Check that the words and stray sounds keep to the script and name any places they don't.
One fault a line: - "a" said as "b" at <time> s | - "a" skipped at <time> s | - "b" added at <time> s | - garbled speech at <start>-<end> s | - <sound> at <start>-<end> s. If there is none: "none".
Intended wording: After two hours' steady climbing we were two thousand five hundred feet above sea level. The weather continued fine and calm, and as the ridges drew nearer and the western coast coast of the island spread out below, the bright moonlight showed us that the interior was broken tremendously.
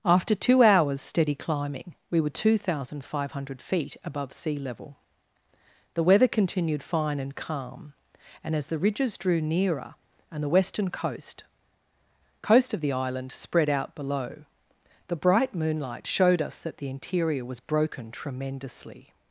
none